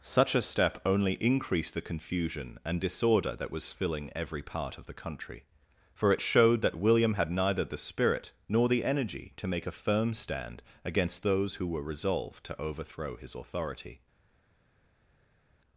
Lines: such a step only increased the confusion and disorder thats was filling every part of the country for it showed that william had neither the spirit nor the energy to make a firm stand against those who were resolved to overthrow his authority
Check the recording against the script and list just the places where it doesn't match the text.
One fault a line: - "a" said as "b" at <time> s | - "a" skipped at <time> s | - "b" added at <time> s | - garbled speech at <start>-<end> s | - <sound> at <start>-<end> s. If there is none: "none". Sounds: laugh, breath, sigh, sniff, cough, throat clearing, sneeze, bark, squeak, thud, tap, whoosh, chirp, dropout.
- "thats" said as "that" at 3.4 s